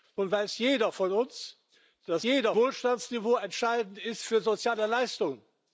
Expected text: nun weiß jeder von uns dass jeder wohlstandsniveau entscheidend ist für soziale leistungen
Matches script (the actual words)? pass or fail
pass